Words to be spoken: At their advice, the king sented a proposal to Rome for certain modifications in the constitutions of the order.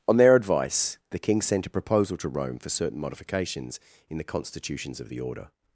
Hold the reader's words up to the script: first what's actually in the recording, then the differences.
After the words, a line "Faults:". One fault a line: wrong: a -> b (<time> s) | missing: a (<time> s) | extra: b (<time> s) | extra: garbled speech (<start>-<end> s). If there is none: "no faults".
On their advice, the king sent a proposal to Rome for certain modifications in the constitutions of the order.
Faults:
wrong: At -> On (0.1 s)
wrong: sented -> sent (1.4 s)